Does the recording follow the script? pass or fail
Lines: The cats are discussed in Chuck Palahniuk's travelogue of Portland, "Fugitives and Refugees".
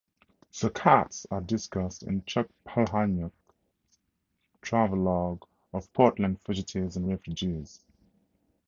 pass